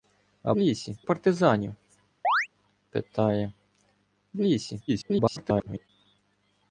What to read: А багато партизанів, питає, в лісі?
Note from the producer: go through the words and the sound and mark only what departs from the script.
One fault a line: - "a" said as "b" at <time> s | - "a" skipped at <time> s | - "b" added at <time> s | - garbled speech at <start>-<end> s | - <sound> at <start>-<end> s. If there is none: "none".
- "багато" said as "лісі" at 0.6 s
- chirp at 2.2-2.5 s
- garbled speech at 4.9-5.9 s